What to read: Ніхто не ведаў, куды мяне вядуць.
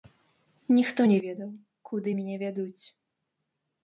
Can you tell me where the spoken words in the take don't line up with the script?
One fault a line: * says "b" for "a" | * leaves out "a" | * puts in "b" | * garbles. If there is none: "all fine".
all fine